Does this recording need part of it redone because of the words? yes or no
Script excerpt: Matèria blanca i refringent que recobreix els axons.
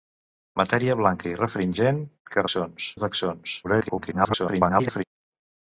yes